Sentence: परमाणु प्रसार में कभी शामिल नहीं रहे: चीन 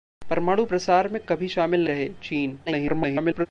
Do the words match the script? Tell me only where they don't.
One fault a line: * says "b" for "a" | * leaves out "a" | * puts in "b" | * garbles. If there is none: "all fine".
* leaves out "नहीं"
* garbles